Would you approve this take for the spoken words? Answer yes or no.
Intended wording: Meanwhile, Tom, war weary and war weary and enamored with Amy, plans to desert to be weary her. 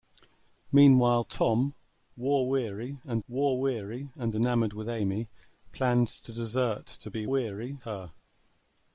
yes